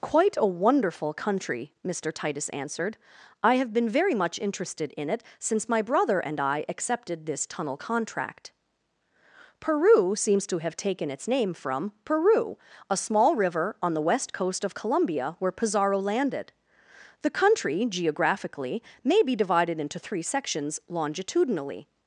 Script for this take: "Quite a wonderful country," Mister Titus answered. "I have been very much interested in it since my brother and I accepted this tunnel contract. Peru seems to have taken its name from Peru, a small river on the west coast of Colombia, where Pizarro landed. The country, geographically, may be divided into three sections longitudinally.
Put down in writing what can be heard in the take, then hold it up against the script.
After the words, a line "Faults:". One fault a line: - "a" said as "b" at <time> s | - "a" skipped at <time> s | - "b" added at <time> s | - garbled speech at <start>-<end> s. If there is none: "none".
"Quite a wonderful country," Mister Titus answered. "I have been very much interested in it since my brother and I accepted this tunnel contract. Peru seems to have taken its name from Peru, a small river on the west coast of Colombia, where Pizarro landed. The country, geographically, may be divided into three sections longitudinally.
Faults:
none